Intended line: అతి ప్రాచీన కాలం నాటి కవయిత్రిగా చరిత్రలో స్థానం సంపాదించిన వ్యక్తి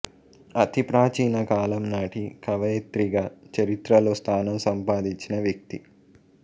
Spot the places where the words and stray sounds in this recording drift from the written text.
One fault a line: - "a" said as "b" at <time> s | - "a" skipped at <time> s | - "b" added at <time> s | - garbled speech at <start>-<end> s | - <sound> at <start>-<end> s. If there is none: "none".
none